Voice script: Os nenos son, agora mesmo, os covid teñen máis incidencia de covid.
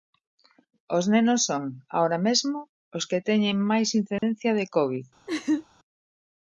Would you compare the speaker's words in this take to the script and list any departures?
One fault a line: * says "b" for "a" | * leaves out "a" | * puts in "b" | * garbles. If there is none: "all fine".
* says "que" for "covid"